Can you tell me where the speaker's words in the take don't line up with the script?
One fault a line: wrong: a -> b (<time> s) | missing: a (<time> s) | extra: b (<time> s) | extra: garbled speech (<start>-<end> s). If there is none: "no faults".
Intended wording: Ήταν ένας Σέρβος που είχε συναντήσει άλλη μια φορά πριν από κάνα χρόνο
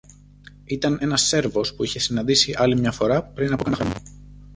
no faults